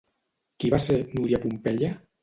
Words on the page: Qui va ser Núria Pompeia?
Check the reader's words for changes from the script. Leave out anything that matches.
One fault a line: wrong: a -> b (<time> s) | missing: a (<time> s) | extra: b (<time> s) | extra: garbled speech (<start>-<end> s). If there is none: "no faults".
no faults